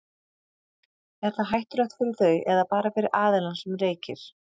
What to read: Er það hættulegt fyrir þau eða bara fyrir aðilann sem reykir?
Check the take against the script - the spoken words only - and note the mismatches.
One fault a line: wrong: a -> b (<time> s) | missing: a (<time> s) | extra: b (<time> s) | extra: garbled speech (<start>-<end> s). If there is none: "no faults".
no faults